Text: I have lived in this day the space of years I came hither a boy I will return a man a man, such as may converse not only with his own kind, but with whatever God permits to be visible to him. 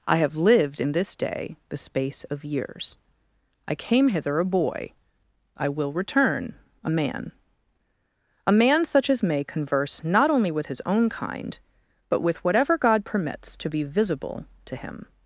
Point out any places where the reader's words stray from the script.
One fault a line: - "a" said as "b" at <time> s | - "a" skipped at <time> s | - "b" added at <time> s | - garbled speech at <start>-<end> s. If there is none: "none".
none